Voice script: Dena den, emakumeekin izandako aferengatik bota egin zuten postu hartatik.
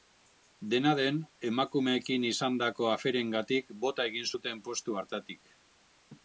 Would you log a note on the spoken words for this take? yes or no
no